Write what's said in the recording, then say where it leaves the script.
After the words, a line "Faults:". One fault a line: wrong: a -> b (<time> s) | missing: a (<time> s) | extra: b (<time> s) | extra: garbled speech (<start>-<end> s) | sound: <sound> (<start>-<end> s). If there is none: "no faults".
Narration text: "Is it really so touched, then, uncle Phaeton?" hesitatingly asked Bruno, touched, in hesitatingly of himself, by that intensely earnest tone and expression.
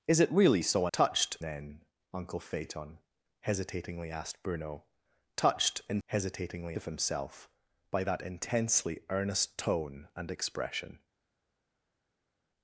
"Is it really so touched, then, uncle Phaeton?" hesitatingly asked Bruno, touched, in hesitatingly of himself, by that intensely earnest tone and expression.
Faults:
no faults